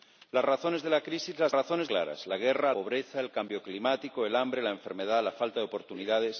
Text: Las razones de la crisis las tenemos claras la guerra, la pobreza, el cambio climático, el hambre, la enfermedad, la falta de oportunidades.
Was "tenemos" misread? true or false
true